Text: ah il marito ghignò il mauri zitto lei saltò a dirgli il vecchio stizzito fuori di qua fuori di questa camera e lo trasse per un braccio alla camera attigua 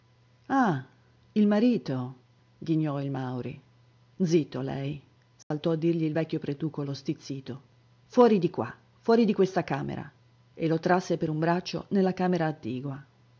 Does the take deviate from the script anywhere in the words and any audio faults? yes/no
yes